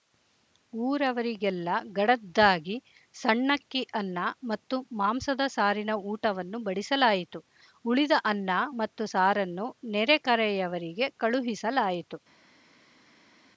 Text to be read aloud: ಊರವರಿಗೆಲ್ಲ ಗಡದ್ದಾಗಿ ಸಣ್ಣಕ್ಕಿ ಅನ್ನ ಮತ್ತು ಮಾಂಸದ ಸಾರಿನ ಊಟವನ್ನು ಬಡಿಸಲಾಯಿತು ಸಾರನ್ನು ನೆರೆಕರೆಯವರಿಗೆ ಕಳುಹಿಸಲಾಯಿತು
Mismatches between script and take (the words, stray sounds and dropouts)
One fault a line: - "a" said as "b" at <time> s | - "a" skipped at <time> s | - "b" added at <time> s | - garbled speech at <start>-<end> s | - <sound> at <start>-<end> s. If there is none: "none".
- "ಉಳಿದ ಅನ್ನ ಮತ್ತು" added at 7.9 s